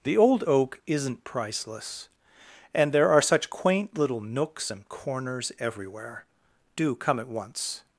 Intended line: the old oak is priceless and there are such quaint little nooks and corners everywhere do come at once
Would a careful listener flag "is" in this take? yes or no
yes